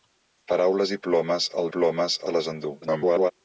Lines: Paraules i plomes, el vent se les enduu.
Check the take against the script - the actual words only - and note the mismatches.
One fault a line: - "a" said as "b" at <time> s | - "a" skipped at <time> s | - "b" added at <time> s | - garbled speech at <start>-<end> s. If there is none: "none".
- "vent" said as "plomes" at 1.8 s
- garbled speech at 2.8-3.3 s